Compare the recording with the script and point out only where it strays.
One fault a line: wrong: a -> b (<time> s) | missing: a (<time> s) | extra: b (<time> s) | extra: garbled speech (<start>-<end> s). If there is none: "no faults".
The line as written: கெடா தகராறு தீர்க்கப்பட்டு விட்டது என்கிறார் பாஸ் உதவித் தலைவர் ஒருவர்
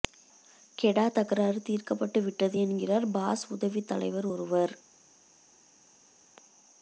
no faults